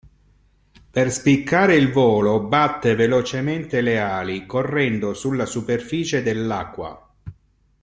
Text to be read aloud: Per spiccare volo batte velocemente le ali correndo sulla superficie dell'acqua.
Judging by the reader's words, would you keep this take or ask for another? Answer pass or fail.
fail